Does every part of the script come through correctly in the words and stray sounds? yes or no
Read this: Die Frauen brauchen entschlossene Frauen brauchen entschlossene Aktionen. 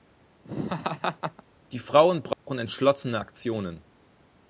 no